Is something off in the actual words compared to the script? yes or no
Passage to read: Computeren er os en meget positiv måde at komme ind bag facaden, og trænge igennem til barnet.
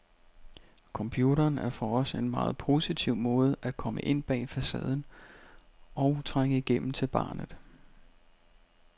yes